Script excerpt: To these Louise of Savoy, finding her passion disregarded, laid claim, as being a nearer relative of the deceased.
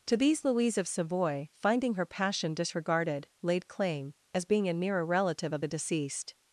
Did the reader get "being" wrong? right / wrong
right